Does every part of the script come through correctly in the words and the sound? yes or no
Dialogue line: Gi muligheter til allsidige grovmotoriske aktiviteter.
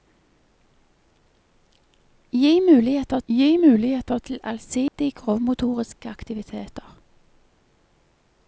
no